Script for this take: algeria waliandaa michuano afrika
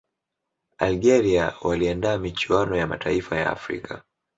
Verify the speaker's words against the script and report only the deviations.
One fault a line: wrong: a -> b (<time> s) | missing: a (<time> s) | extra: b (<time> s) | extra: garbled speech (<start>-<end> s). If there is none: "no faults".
extra: ya mataifa ya (2.8 s)